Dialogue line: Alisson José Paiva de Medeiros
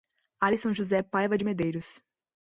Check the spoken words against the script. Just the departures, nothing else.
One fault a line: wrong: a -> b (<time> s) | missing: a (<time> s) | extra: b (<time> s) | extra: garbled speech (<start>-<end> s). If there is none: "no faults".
no faults